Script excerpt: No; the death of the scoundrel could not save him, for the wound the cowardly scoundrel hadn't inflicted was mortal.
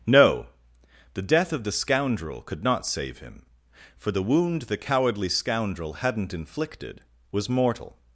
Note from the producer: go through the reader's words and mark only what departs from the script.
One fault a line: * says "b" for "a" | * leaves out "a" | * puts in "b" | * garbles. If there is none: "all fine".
all fine